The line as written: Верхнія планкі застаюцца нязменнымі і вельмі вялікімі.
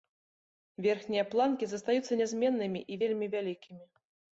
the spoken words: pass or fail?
pass